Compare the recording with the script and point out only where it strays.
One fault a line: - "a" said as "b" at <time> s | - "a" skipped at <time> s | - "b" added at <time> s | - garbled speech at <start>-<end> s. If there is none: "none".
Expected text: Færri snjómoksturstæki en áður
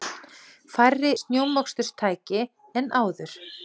none